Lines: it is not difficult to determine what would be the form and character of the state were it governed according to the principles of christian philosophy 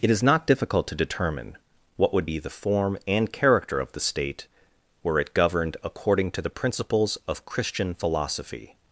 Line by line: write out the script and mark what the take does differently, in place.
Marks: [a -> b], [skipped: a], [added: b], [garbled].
it is not difficult to determine what would be the form and character of the state were it governed according to the principles of christian philosophy